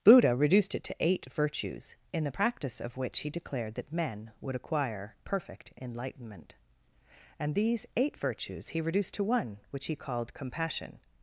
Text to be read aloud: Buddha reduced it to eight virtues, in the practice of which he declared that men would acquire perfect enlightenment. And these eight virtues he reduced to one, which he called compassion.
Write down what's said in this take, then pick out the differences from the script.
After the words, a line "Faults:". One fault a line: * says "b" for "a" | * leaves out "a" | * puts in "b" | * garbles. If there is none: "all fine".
Buddha reduced it to eight virtues, in the practice of which he declared that men would acquire perfect enlightenment. And these eight virtues he reduced to one, which he called compassion.
Faults:
all fine